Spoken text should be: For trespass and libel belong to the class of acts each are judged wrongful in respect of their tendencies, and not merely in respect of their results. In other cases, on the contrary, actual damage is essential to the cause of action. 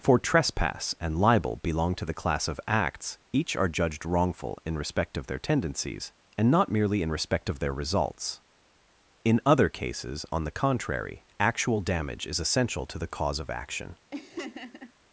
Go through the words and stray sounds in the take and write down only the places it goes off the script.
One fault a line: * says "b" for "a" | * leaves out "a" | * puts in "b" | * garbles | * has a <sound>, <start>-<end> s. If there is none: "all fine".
* has a laugh, 14.1-14.9 s